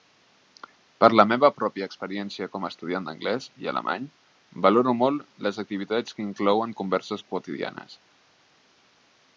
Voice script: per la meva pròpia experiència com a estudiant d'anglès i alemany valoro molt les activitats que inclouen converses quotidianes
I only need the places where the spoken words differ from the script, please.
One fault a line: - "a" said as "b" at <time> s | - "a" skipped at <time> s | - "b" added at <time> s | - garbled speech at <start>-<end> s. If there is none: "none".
none